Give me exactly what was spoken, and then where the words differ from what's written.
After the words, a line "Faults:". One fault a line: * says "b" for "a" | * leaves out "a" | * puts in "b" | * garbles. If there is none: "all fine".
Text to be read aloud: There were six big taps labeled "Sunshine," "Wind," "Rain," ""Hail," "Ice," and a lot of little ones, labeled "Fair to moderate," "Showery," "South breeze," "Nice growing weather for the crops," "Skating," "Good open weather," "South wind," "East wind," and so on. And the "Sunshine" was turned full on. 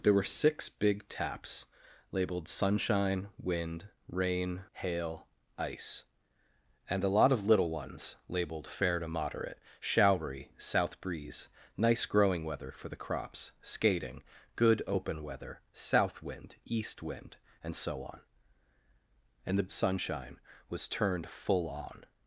There were six big taps labeled "Sunshine," "Wind," "Rain," ""Hail," "Ice," and a lot of little ones, labeled "Fair to moderate," "Showery," "South breeze," "Nice growing weather for the crops," "Skating," "Good open weather," "South wind," "East wind," and so on. And the "Sunshine" was turned full on.
Faults:
all fine